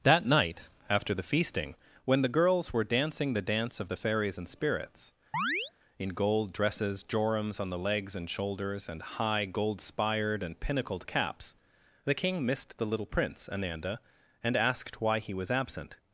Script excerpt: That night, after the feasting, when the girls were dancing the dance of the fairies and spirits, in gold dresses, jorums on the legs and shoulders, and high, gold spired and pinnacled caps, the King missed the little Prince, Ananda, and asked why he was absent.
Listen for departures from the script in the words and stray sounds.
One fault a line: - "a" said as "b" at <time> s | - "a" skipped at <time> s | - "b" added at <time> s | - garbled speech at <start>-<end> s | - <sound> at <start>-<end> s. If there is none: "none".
- chirp at 5.3-5.7 s